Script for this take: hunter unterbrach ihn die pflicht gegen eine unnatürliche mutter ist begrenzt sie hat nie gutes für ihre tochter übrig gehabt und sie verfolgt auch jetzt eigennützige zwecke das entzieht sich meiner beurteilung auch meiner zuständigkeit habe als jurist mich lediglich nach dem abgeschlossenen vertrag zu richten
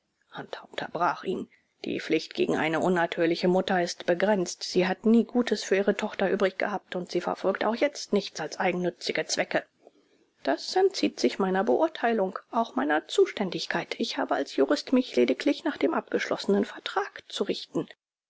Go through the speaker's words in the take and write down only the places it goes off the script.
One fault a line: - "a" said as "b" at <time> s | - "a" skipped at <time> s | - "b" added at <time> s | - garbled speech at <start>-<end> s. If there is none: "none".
- "nichts als" added at 8.1 s
- "ich" added at 14.0 s